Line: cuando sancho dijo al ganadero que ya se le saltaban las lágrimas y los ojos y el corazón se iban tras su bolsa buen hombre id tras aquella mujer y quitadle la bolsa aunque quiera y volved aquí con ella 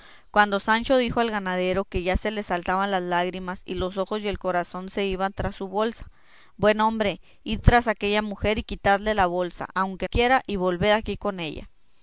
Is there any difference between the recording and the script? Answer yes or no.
no